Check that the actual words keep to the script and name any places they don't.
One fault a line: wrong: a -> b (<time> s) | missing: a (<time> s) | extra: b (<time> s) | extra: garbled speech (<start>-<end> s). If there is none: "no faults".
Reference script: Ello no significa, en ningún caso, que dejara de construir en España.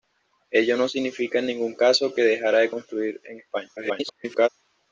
extra: garbled speech (3.8-4.5 s)